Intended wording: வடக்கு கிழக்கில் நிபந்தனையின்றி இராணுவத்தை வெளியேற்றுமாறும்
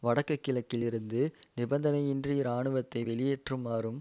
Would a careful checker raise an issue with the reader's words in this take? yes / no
yes